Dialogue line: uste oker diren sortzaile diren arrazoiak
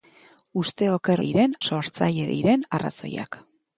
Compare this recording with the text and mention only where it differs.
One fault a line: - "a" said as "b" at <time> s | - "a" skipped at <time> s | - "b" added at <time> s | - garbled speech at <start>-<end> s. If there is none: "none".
none